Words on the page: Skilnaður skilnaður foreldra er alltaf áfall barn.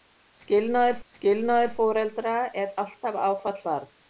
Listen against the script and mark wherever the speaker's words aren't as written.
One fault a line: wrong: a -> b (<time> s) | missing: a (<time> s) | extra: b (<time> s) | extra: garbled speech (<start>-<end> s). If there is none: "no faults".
no faults